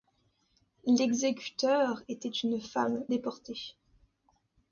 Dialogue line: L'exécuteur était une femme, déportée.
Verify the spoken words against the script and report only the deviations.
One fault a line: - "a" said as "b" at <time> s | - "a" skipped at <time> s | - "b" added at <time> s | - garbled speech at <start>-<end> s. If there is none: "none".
none